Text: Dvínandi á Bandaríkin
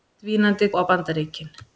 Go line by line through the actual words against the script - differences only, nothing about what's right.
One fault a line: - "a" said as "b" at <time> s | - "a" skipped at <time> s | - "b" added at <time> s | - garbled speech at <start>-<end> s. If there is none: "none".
none